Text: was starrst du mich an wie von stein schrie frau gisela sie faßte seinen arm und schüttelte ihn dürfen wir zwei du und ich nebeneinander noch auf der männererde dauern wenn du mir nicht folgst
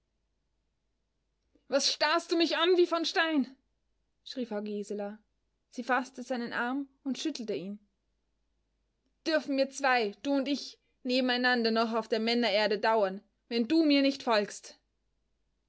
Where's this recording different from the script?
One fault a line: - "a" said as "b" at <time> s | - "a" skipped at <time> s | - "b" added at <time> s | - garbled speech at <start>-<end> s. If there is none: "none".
none